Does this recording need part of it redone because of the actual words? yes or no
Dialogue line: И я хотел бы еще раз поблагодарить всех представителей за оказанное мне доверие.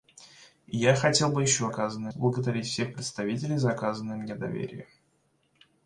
yes